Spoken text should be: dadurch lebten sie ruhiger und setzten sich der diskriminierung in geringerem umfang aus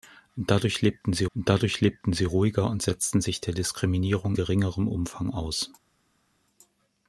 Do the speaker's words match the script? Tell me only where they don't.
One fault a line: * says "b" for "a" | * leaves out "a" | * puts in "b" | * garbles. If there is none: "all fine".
* puts in "dadurch lebten sie"
* leaves out "in"